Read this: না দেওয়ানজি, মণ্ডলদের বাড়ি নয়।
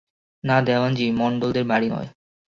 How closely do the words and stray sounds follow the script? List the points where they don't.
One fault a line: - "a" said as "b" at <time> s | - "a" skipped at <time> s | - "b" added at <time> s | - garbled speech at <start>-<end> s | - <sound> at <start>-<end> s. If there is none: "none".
none